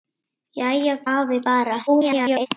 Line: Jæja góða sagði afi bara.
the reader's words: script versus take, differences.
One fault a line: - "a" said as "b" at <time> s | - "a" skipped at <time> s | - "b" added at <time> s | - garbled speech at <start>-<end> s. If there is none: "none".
- "góða sagði" skipped at 0.9 s
- garbled speech at 1.9-2.5 s